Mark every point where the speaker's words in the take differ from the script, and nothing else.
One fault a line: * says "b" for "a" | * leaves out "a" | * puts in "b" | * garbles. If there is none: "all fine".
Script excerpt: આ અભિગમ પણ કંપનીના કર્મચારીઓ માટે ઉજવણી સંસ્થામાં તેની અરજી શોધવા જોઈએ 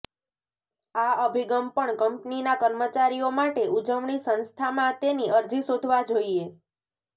all fine